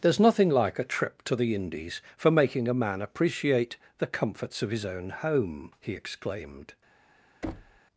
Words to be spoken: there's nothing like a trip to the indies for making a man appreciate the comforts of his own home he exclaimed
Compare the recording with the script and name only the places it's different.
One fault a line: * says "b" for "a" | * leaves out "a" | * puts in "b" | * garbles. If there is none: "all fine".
all fine